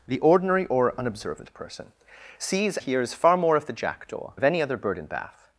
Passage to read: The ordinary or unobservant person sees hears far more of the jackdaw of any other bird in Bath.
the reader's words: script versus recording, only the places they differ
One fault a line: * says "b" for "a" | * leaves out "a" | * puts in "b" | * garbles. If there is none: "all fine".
all fine